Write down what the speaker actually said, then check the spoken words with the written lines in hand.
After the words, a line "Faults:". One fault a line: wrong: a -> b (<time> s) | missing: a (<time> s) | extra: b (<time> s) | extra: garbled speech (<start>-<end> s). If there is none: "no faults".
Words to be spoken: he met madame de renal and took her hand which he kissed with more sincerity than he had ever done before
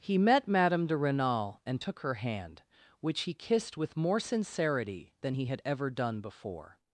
he met madame de renal and took her hand which he kissed with more sincerity than he had ever done before
Faults:
no faults